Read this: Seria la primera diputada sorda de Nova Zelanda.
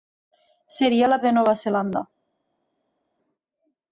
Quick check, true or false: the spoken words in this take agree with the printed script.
false